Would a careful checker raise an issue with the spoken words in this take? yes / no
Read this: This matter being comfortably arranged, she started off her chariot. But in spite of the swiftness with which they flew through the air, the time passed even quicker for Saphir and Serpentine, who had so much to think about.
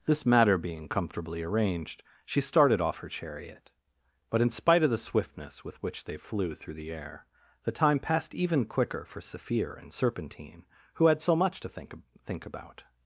yes